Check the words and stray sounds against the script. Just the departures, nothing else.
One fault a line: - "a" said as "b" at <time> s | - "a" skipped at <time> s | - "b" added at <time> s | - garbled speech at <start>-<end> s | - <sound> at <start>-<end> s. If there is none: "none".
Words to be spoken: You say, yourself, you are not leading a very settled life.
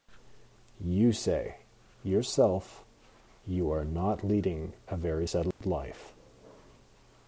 - dropout at 5.5-5.6 s